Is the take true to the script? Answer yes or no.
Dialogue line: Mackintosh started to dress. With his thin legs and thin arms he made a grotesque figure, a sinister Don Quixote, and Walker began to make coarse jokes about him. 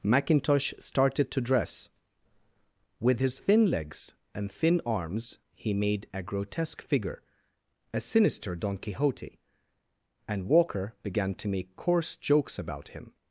yes